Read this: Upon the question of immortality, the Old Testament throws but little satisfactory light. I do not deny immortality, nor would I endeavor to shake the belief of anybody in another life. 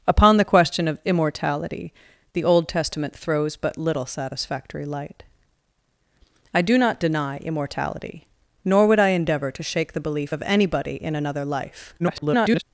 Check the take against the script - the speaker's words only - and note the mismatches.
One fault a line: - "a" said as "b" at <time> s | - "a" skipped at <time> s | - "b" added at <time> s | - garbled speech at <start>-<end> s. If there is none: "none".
- garbled speech at 12.0-12.6 s